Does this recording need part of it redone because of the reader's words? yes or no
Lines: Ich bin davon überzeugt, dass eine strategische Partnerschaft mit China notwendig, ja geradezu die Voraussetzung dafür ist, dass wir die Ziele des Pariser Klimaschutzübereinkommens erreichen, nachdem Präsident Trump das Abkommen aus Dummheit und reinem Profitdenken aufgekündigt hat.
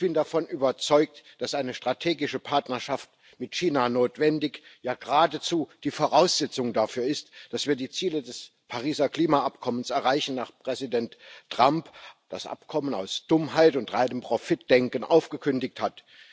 no